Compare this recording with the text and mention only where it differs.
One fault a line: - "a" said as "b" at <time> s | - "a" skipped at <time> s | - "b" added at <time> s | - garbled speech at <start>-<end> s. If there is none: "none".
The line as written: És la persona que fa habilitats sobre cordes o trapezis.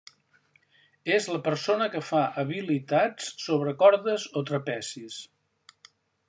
none